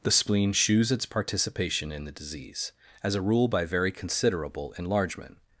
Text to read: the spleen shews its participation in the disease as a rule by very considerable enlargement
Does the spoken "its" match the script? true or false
true